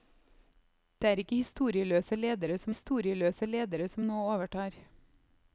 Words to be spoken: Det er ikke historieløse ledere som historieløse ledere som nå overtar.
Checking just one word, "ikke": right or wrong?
right